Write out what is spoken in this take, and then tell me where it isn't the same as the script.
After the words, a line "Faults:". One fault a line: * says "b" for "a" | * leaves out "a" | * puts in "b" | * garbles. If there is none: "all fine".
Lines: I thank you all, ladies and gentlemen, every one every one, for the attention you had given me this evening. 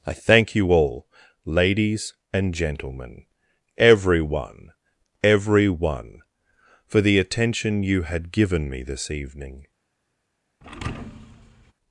I thank you all, ladies and gentlemen, every one every one, for the attention you had given me this evening.
Faults:
all fine